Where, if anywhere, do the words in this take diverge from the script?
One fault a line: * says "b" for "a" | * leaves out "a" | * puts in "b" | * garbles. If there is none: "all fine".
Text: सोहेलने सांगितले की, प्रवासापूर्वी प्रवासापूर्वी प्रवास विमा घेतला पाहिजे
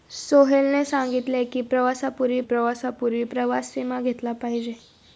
all fine